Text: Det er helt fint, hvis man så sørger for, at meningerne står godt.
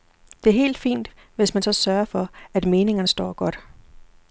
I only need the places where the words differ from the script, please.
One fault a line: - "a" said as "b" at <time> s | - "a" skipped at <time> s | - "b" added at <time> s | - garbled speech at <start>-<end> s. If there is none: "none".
none